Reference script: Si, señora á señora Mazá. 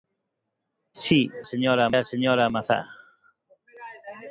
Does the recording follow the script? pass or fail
pass